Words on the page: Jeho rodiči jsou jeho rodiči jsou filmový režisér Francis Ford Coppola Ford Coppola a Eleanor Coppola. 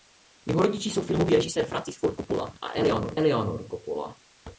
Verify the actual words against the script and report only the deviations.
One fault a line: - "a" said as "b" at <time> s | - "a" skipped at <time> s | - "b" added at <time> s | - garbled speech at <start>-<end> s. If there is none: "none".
- "jeho rodiči jsou" skipped at 1.0 s
- "Ford Coppola" skipped at 2.5 s